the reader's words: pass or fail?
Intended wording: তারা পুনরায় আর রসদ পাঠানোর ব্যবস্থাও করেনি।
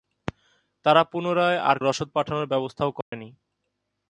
pass